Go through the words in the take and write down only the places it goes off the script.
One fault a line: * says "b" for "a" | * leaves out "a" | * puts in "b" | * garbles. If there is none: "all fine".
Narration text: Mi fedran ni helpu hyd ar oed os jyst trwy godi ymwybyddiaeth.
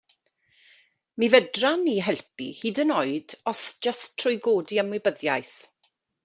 * says "yn" for "ar"